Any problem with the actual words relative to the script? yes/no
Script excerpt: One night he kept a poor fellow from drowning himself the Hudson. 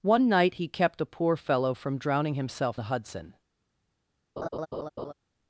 no